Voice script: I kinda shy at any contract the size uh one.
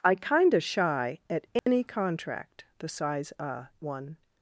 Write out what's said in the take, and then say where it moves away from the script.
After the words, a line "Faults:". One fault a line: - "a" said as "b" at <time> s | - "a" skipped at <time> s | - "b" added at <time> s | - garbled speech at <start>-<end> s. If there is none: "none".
I kinda shy at any contract the size uh one.
Faults:
none